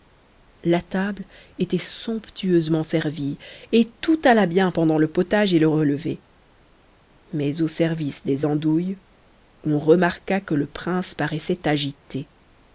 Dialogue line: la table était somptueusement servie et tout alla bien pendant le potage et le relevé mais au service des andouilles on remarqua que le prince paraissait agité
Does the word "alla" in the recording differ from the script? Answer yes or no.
no